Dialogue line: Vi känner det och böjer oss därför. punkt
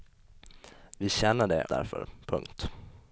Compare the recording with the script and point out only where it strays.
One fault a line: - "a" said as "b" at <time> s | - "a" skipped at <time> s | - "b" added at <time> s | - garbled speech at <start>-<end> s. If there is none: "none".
- "och böjer oss" skipped at 1.6 s